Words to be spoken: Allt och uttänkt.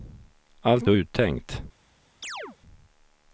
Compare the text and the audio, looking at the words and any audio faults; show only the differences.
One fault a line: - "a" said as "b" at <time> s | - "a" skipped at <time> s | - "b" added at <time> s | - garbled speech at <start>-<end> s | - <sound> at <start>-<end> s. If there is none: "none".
- chirp at 2.2-2.6 s